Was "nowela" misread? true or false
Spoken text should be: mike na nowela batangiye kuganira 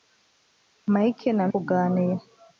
true